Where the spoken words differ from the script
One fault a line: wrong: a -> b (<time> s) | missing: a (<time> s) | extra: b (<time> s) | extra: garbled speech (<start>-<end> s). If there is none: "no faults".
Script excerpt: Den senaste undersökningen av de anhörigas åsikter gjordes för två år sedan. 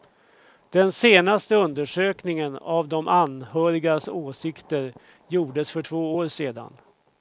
no faults